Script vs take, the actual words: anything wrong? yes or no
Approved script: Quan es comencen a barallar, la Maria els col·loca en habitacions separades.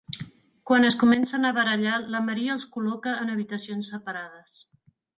no